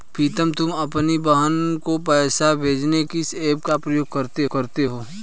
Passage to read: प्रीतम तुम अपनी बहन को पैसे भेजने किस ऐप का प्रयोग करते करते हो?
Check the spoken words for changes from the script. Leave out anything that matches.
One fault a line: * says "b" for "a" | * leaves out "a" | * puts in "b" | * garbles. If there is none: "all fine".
all fine